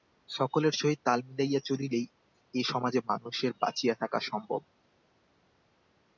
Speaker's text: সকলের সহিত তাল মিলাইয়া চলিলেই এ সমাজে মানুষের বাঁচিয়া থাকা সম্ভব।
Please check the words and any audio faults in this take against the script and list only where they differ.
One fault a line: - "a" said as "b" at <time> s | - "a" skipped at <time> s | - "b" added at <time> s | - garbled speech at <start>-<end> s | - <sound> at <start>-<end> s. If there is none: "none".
none